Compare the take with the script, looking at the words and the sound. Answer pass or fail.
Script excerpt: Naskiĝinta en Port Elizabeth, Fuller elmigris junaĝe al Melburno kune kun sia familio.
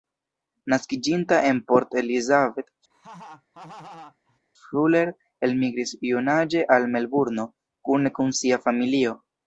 fail